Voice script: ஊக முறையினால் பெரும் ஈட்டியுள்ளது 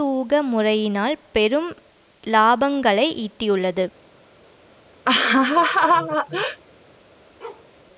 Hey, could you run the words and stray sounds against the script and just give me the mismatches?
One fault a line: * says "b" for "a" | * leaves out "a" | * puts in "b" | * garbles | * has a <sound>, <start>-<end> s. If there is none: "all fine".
* puts in "இலாபங்களை"
* has a laugh, 5.0-6.6 s
* has a bark, 7.4-7.7 s